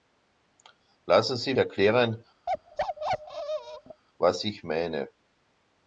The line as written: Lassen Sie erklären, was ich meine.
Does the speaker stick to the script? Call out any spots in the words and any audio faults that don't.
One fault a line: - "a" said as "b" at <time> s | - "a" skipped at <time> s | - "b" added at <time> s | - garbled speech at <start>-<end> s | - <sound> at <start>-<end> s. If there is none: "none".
- bark at 2.5-4.0 s